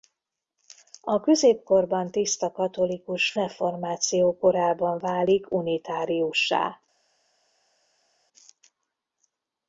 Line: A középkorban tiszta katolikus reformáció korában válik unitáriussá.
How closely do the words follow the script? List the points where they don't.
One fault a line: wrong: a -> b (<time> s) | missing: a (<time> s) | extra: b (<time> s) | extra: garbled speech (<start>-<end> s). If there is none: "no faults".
no faults